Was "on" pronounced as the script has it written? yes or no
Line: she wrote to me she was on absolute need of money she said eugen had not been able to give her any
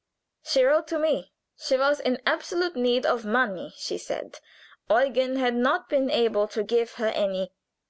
no